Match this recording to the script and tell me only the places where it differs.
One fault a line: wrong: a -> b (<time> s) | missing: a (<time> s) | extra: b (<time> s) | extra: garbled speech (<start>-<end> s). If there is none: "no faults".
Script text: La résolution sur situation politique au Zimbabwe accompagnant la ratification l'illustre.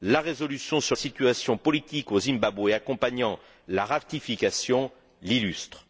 no faults